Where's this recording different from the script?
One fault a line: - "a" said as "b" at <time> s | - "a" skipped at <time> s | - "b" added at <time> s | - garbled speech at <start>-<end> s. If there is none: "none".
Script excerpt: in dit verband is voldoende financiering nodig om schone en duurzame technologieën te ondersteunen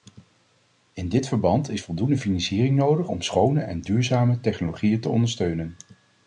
none